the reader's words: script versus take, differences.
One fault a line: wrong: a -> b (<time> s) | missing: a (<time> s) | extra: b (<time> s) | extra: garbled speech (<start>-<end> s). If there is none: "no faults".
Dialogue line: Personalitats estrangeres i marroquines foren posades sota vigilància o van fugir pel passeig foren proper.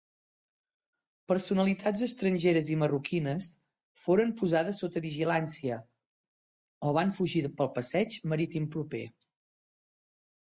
wrong: foren -> marítim (8.3 s)